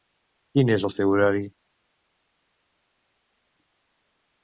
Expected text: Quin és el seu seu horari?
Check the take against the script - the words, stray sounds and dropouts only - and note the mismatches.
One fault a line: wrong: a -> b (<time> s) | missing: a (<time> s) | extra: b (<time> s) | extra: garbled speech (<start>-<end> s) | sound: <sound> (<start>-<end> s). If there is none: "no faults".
missing: seu (1.1 s)